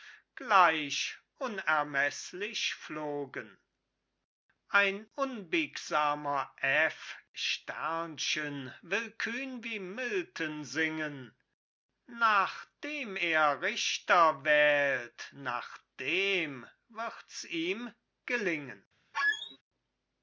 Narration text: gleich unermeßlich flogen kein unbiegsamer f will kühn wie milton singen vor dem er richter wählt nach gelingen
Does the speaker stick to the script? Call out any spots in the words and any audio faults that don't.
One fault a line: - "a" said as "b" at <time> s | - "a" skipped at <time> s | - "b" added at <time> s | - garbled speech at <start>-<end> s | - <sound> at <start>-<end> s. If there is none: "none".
- "kein" said as "ein" at 4.7 s
- "vor" said as "nach" at 12.0 s
- "dem wirds ihm" added at 16.0 s
- squeak at 19.1-19.6 s